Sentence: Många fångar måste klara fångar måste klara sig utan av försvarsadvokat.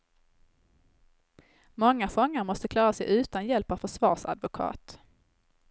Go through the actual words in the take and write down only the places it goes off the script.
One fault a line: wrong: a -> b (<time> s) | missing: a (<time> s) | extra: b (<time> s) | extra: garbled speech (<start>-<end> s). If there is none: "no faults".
missing: fångar måste klara (2.9 s)
extra: hjälp (3.5 s)